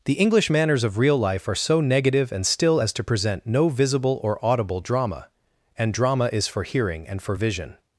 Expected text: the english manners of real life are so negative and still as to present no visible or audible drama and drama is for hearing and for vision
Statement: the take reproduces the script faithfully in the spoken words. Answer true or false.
true